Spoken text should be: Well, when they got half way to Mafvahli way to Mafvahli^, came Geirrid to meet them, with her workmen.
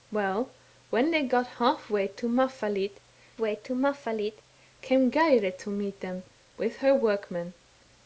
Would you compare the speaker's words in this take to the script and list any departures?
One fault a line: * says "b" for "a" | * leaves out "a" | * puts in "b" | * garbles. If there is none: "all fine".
all fine